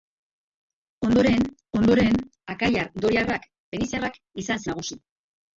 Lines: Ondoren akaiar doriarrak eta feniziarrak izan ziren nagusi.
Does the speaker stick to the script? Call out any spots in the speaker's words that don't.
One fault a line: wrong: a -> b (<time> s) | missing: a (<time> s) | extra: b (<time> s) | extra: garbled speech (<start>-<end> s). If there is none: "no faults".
extra: ondoren (1.8 s)
missing: eta (3.5 s)
missing: ziren (4.6 s)